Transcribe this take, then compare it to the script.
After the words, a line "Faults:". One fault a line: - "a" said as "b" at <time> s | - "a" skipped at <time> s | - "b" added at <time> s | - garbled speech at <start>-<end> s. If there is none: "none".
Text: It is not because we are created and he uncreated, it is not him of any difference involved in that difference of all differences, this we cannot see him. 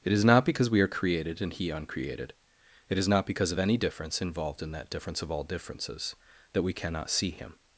It is not because we are created and he uncreated, it is not because of any difference involved in that difference of all differences, that we cannot see him.
Faults:
- "him" said as "because" at 3.2 s
- "this" said as "that" at 6.5 s